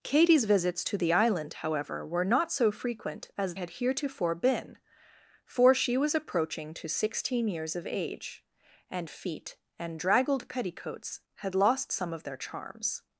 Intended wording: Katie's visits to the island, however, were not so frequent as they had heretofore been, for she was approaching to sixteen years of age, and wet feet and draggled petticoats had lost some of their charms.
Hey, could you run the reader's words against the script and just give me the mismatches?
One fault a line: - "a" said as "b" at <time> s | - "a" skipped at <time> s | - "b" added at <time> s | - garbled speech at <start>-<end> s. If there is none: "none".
- "they" skipped at 3.5 s
- "wet" skipped at 9.1 s